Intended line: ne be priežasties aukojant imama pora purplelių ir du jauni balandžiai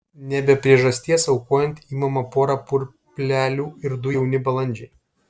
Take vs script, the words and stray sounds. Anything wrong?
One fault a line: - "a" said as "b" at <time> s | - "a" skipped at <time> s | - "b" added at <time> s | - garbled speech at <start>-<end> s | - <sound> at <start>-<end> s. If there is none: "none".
none